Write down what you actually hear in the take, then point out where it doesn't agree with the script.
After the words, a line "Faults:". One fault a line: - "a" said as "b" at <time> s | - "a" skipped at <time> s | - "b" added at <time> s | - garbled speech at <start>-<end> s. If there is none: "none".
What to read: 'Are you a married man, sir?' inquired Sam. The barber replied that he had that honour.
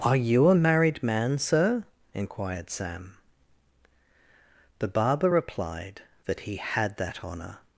'Are you a married man, sir?' inquired Sam. The barber replied that he had that honour.
Faults:
none